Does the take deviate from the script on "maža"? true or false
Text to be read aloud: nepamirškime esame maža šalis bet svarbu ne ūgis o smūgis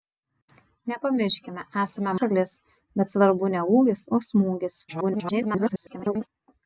true